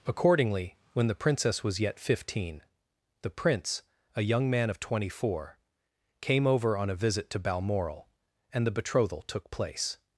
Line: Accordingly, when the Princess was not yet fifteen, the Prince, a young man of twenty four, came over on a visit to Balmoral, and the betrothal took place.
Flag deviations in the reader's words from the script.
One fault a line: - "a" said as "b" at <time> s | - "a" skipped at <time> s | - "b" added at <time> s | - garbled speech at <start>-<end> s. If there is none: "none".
- "not" skipped at 1.8 s